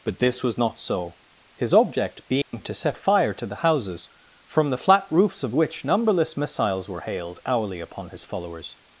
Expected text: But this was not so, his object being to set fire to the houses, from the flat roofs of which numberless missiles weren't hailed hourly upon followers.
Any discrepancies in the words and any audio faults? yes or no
yes